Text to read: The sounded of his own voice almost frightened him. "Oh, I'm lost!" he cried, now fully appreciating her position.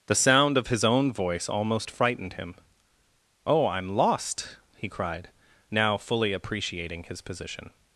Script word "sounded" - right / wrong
wrong